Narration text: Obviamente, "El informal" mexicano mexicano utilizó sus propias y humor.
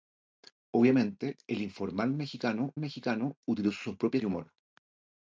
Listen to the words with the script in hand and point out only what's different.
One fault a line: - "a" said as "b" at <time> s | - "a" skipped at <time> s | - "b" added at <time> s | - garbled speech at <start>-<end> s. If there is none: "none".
none